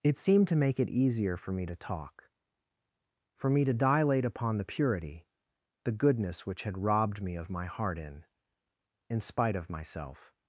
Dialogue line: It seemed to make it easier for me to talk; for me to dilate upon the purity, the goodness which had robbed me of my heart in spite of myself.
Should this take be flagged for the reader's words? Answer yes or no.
yes